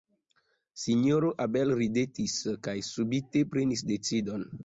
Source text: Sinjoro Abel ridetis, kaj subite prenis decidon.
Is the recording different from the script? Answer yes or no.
no